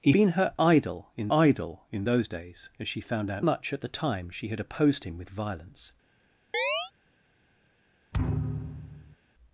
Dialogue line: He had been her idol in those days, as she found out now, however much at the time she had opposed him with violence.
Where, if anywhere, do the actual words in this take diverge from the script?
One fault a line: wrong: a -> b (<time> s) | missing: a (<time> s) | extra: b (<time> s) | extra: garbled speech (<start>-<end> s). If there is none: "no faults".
missing: had (0.1 s)
extra: idol in (1.3 s)
missing: now however (3.4 s)